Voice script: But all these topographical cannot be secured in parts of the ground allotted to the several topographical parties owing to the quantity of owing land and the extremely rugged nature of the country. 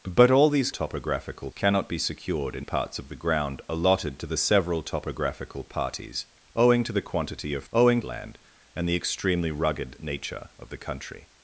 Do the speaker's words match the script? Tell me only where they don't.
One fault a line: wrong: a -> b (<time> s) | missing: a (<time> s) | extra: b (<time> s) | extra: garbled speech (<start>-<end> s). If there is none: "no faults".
no faults